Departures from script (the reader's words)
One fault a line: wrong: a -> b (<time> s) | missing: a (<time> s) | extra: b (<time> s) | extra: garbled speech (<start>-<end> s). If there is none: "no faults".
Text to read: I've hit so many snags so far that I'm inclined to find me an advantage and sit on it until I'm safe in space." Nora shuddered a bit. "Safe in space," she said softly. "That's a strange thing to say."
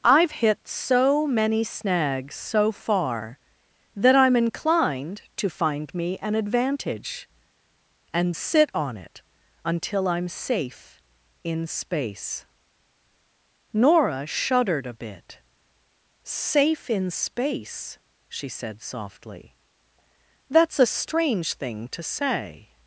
no faults